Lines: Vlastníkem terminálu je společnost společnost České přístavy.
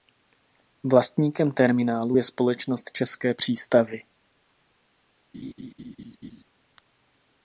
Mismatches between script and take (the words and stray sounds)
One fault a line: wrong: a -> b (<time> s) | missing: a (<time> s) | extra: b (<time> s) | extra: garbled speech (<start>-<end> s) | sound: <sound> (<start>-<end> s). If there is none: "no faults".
missing: společnost (2.9 s)
sound: laugh (5.3-6.4 s)